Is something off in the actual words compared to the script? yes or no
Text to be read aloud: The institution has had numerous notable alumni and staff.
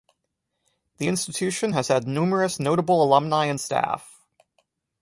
no